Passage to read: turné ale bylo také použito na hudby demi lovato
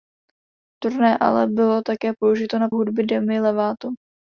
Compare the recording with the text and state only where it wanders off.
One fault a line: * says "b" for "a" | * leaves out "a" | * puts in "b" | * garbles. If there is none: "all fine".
all fine